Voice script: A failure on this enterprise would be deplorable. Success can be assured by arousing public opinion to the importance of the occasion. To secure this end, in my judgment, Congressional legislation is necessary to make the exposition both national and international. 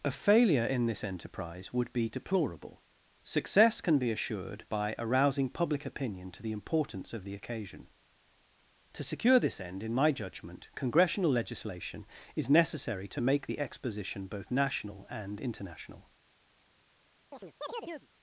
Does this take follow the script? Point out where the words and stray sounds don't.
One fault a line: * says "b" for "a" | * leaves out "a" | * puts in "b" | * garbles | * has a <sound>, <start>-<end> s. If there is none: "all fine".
* says "in" for "on"
* has a chirp, 17.3-18.1 s